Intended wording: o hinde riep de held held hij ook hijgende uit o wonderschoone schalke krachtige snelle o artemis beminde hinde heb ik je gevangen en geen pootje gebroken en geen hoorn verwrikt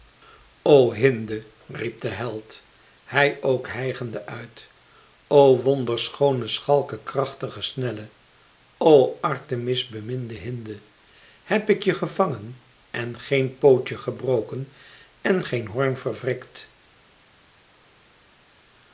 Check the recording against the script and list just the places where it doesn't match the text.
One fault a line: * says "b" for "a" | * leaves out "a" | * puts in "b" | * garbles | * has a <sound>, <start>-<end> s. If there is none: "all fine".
* leaves out "held"